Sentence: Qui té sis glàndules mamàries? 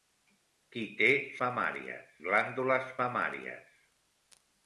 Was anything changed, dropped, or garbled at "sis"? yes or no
yes